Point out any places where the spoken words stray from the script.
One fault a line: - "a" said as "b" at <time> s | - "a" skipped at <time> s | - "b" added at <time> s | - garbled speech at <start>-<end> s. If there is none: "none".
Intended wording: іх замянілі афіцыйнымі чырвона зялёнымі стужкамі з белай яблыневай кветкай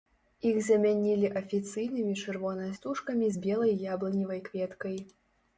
- "зялёнымі" skipped at 2.6 s